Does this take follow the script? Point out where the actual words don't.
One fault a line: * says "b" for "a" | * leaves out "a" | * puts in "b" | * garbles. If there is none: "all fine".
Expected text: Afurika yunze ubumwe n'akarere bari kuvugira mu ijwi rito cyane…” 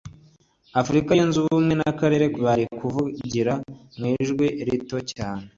all fine